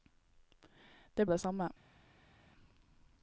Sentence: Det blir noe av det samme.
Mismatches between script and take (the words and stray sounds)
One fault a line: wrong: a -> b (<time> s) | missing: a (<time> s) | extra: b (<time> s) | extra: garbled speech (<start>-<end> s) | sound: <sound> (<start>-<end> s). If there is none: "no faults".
missing: blir noe (1.2 s)